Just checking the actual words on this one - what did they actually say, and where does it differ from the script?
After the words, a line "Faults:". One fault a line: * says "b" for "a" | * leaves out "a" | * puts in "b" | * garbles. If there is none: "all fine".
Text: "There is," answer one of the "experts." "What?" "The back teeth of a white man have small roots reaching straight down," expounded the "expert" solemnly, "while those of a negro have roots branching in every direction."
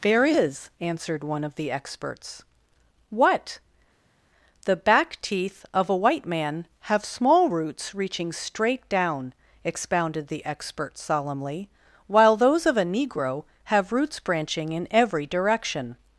"There is," answered one of the "experts." "What?" "The back teeth of a white man have small roots reaching straight down," expounded the "expert" solemnly, "while those of a negro have roots branching in every direction."
Faults:
* says "answered" for "answer"